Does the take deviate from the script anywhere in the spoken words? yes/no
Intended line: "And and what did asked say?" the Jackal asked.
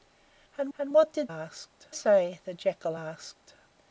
no